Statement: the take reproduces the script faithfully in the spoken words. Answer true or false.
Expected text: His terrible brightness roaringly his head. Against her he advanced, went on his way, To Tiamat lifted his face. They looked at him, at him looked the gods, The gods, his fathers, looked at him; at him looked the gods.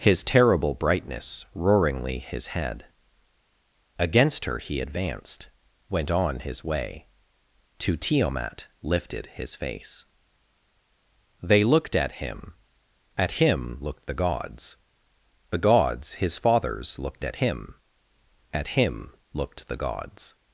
true